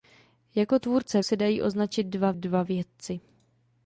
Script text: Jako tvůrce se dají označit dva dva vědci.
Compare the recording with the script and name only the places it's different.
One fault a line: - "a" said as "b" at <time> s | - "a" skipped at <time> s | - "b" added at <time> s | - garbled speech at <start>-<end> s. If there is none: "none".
none